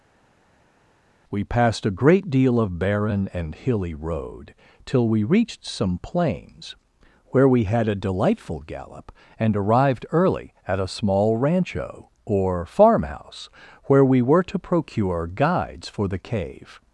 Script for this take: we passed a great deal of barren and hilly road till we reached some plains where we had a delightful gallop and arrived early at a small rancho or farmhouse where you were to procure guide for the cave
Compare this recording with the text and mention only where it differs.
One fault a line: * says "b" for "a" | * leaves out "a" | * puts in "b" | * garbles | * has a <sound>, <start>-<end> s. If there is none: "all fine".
* says "we" for "you"
* says "guides" for "guide"